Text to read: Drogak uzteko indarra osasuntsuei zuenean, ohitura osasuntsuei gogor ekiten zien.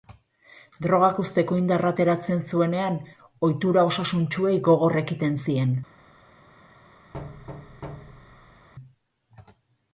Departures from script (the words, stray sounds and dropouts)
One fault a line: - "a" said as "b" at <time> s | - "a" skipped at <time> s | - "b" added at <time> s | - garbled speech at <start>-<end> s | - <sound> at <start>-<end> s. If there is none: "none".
- "osasuntsuei" said as "ateratzen" at 1.9 s
- thud at 7.1-8.7 s